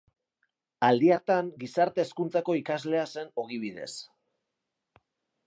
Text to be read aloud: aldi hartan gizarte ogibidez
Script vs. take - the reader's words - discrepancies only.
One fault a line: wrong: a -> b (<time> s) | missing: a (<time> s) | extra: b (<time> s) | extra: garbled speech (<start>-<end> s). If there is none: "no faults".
extra: hezkuntzako ikaslea zen (2.1 s)